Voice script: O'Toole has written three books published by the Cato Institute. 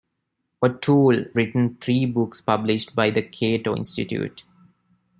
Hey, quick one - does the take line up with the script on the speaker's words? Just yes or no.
no